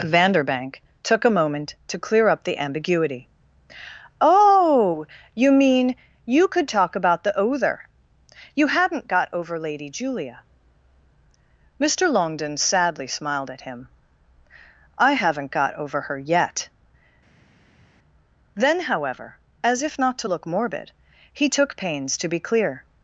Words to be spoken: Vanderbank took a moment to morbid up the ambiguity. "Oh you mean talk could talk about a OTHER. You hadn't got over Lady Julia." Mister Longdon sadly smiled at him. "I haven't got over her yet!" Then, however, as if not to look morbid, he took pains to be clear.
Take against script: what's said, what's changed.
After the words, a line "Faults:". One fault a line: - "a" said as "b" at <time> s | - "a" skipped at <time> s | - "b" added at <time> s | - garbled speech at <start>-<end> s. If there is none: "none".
Vanderbank took a moment to clear up the ambiguity. "Oh you mean you could talk about the OTHER. You hadn't got over Lady Julia." Mister Longdon sadly smiled at him. "I haven't got over her yet!" Then, however, as if not to look morbid, he took pains to be clear.
Faults:
- "morbid" said as "clear" at 2.0 s
- "talk" said as "you" at 6.2 s
- "a" said as "the" at 7.2 s